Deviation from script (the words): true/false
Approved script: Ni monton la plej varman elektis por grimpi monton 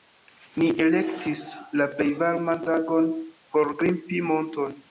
true